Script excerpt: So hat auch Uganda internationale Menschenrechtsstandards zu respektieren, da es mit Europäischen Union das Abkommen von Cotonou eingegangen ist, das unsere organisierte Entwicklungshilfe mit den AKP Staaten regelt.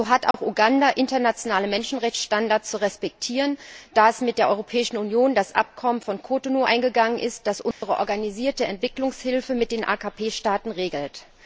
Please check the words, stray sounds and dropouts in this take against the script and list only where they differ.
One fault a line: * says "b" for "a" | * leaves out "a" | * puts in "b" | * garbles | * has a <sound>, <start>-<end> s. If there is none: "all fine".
* has a dropout, 0.3-0.3 s
* puts in "der"
* has a dropout, 7.7-7.8 s